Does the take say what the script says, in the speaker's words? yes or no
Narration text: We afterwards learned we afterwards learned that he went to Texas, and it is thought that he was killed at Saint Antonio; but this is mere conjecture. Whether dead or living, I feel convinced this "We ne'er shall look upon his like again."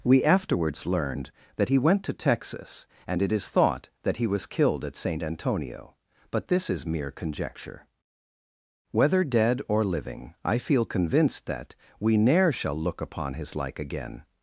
no